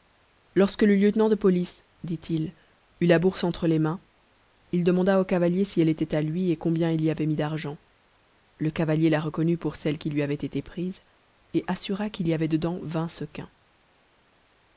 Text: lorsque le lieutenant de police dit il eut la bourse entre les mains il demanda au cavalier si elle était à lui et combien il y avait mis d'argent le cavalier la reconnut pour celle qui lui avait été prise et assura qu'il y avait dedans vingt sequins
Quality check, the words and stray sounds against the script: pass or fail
pass